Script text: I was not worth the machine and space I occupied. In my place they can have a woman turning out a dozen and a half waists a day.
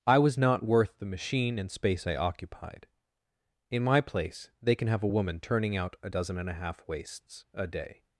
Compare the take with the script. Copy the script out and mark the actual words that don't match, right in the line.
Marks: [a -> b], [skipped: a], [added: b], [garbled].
I was not worth the machine and space I occupied. In my place they can have a woman turning out a dozen and a half waists a day.